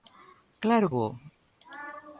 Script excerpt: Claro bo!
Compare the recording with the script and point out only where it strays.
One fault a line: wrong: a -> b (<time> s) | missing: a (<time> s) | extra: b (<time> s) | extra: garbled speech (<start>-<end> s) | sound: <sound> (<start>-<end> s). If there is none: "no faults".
no faults